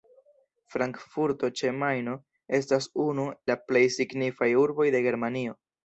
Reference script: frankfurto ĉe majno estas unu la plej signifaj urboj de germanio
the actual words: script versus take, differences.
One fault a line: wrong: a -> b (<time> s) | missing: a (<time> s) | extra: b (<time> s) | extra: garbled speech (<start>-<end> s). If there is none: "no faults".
no faults